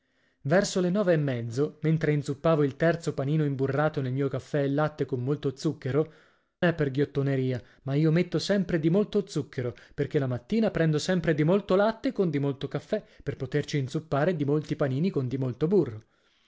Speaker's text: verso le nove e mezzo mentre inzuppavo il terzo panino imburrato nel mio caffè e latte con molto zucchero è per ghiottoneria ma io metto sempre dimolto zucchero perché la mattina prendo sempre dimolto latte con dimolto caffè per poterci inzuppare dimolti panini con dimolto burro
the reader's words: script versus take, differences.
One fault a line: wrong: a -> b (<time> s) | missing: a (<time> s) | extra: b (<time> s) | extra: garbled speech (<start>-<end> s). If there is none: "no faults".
no faults